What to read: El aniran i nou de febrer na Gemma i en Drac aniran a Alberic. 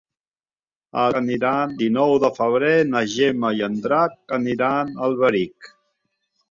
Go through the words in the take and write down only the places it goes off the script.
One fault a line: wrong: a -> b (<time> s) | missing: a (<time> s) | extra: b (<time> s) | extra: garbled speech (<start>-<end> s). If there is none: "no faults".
no faults